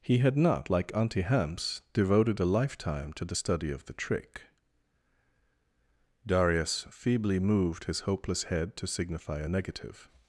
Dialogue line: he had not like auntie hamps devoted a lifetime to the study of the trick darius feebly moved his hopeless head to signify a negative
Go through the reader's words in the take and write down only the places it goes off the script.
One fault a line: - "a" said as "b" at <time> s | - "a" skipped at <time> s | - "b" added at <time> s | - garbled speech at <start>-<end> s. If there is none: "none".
none